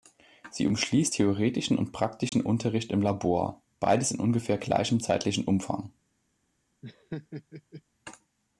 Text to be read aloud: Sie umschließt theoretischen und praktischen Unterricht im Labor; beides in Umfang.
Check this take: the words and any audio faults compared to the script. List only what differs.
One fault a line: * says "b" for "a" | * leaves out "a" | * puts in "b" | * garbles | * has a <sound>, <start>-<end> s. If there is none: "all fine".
* has a dropout, 2.3-2.3 s
* puts in "ungefähr gleichem zeitlichen"
* has a laugh, 6.8-7.8 s